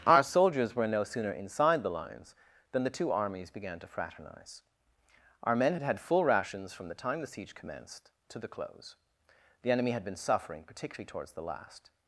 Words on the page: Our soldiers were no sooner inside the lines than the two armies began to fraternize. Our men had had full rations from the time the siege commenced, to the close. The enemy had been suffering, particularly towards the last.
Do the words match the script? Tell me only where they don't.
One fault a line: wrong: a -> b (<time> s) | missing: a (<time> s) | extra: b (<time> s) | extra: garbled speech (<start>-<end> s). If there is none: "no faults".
no faults